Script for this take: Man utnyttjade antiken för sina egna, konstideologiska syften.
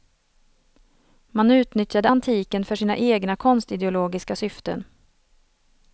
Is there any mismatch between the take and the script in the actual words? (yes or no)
no